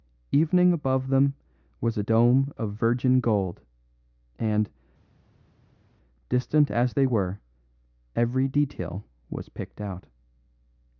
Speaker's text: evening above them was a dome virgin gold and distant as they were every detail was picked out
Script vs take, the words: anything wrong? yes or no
yes